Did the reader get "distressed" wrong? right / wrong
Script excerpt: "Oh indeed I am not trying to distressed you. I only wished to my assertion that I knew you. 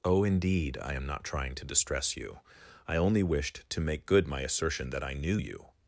wrong